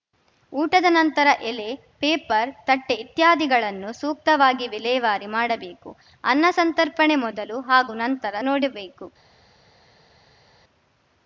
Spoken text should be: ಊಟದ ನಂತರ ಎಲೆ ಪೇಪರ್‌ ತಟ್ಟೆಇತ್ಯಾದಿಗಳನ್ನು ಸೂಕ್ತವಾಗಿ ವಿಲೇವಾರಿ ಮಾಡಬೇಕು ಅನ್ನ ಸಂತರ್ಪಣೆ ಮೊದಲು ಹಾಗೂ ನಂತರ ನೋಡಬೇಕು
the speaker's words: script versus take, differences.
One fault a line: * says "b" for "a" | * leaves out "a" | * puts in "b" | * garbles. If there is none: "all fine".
all fine